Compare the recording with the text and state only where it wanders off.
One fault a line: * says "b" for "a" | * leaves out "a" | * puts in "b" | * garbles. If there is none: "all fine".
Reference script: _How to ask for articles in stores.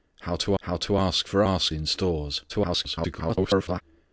* puts in "how to"
* says "ask" for "articles"
* garbles